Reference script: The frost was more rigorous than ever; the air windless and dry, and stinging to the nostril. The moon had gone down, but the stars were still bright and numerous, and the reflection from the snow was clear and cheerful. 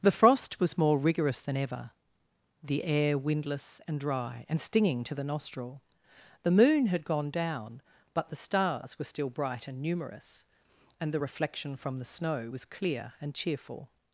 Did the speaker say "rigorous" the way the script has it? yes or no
yes